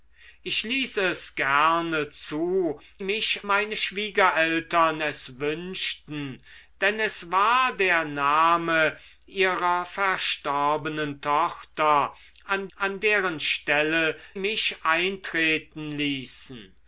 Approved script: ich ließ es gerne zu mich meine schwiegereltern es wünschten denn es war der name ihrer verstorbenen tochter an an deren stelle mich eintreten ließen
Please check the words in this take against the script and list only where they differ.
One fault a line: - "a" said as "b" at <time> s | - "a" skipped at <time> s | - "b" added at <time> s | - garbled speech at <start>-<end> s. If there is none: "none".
none